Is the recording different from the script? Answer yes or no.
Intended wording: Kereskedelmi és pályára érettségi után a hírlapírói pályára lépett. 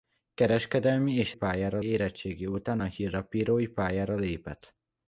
no